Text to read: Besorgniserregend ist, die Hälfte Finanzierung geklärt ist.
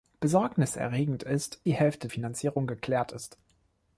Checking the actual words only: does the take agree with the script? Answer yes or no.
yes